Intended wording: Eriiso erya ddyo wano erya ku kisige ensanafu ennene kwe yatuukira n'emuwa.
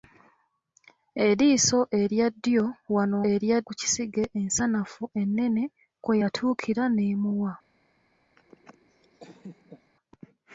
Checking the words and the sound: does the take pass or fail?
fail